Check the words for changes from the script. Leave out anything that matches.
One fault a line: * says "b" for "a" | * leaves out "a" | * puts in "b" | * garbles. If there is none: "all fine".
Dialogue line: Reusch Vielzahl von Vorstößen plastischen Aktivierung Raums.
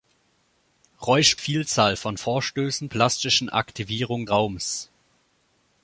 all fine